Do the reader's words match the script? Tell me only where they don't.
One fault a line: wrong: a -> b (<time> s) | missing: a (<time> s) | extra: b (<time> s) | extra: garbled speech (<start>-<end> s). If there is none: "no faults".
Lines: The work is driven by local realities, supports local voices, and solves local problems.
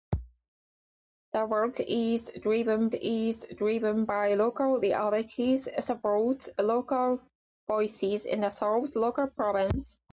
extra: is driven (2.9 s)